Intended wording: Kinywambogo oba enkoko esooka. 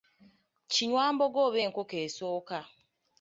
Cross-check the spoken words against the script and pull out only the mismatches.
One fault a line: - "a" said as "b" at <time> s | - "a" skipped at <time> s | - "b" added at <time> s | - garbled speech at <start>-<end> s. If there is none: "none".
none